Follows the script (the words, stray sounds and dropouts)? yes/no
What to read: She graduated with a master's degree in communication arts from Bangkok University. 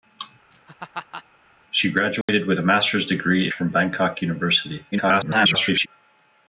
no